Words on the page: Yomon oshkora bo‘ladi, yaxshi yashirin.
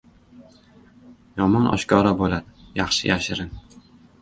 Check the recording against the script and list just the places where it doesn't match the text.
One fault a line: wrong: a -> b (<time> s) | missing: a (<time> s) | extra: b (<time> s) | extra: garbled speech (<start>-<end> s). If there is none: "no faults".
no faults